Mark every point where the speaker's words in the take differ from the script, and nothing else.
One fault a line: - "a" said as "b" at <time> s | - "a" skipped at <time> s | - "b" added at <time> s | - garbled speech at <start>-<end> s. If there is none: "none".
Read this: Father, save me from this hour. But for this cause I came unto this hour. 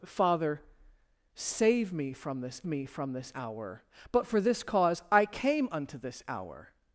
- "me from this" added at 2.7 s